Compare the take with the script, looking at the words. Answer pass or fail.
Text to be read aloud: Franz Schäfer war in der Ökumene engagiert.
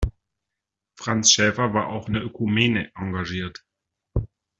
fail